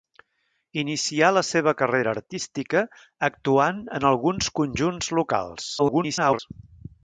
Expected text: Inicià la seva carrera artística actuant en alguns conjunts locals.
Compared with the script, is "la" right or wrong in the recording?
right